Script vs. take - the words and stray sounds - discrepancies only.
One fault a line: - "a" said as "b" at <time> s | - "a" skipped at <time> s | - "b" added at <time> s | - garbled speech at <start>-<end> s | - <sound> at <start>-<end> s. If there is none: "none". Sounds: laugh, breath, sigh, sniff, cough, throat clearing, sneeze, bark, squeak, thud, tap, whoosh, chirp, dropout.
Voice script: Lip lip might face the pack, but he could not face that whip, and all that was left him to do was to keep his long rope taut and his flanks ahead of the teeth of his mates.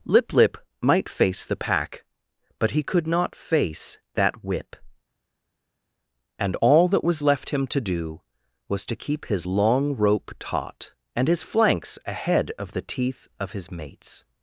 none